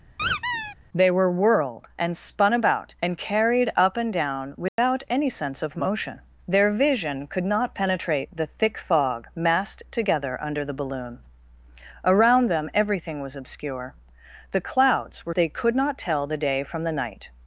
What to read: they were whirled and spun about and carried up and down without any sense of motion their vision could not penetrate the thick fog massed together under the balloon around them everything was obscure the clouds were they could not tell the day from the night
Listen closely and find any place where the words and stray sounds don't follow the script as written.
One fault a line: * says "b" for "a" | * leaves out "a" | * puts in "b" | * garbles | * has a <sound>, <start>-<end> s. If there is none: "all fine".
* has a squeak, 0.2-0.8 s
* has a dropout, 4.7-4.8 s